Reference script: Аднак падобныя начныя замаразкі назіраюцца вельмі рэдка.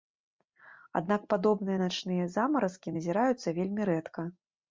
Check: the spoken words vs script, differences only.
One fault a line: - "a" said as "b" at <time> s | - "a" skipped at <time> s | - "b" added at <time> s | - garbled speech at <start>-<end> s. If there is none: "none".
none